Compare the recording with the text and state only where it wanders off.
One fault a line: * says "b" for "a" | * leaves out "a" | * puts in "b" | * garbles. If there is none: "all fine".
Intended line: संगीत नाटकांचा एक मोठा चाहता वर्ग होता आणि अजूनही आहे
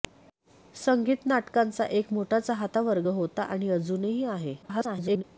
* garbles